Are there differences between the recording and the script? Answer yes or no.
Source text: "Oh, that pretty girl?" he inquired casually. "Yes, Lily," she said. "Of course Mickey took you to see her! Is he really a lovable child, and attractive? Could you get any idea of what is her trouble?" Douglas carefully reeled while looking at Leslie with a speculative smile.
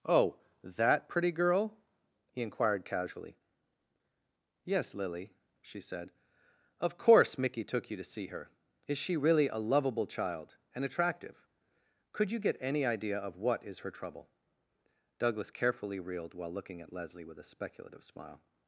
yes